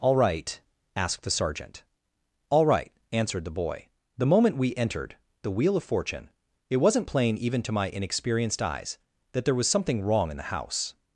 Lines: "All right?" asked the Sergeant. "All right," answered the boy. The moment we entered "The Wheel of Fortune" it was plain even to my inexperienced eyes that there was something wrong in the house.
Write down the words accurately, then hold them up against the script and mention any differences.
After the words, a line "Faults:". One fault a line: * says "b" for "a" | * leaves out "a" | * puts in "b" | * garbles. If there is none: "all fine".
"All right?" asked the Sergeant. "All right," answered the boy. The moment we entered "The Wheel of Fortune" it wasn't plain even to my inexperienced eyes that there was something wrong in the house.
Faults:
* says "wasn't" for "was"